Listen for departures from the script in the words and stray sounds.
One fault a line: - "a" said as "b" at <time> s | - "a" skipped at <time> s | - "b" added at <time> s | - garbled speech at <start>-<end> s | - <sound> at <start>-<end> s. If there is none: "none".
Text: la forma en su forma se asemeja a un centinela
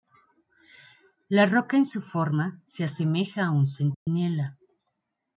- "forma" said as "roca" at 1.4 s
- dropout at 3.9-4.1 s